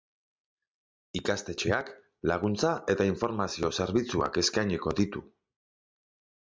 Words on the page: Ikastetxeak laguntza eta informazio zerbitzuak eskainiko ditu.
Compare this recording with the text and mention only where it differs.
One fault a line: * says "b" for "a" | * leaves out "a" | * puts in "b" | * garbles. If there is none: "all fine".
all fine